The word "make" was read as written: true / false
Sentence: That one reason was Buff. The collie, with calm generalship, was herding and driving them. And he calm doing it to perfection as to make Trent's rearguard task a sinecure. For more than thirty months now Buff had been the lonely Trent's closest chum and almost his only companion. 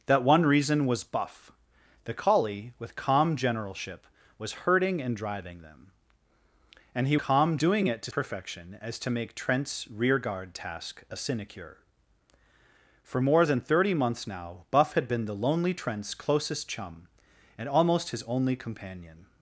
true